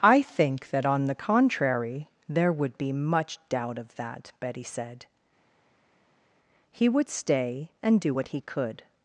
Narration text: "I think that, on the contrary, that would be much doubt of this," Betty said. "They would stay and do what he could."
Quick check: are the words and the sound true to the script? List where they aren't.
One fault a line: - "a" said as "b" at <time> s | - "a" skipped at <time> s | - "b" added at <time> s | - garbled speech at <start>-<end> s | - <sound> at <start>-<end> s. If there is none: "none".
- "that" said as "there" at 2.3 s
- "this" said as "that" at 4.0 s
- "They" said as "He" at 6.7 s